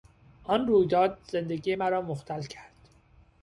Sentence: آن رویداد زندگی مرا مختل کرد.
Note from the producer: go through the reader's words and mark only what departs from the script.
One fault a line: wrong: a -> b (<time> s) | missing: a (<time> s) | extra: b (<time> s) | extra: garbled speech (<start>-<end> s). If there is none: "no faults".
no faults